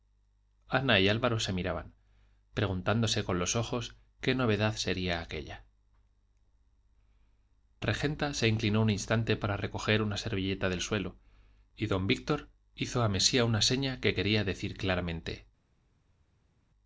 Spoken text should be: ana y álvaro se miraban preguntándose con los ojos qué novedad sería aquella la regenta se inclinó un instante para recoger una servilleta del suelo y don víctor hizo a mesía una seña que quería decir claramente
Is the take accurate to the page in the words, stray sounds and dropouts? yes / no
no